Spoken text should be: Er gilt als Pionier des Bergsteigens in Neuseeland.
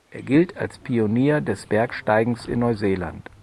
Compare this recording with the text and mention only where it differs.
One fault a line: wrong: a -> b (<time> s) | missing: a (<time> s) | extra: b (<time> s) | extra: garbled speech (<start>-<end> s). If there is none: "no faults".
no faults